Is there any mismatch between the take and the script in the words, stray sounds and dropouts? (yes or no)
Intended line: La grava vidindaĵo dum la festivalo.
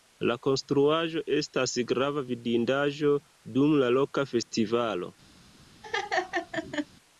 yes